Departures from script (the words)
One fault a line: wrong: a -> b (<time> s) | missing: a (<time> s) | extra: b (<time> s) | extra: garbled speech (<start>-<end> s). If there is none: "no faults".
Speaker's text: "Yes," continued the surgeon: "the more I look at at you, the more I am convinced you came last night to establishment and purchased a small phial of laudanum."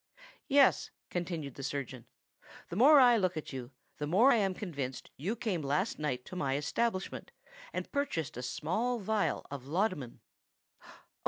missing: at (3.5 s)
extra: my (6.3 s)